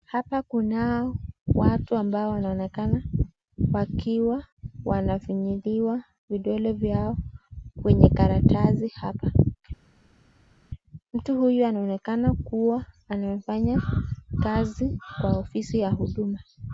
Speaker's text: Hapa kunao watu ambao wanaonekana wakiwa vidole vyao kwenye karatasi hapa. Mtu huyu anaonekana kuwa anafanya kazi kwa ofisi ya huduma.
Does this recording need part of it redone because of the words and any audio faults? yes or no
yes